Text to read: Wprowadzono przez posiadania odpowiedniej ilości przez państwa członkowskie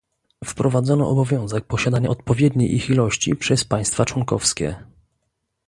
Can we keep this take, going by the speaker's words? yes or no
no